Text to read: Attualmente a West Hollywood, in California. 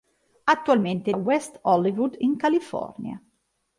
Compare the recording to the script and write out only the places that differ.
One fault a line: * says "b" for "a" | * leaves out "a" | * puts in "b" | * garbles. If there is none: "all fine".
all fine